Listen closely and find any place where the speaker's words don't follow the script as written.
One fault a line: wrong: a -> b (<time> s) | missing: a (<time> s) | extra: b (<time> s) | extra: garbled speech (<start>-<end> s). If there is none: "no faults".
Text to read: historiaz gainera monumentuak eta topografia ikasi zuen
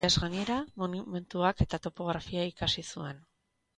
no faults